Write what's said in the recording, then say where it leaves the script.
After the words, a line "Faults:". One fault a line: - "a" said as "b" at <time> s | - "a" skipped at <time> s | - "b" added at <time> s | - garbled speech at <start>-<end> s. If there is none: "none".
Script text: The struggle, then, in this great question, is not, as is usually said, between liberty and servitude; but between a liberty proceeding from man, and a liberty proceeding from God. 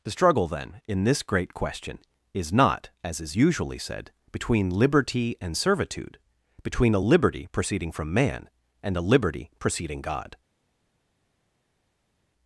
The struggle, then, in this great question, is not, as is usually said, between liberty and servitude; between a liberty proceeding from man, and a liberty proceeding God.
Faults:
- "but" skipped at 6.2 s
- "from" skipped at 10.0 s